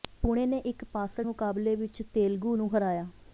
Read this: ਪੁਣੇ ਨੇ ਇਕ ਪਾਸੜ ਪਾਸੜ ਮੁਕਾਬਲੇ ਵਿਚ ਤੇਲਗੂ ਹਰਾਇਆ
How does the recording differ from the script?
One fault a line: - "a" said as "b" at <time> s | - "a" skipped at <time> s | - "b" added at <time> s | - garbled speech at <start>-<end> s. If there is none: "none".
- "ਪਾਸੜ" skipped at 1.3 s
- "ਨੂੰ" added at 2.5 s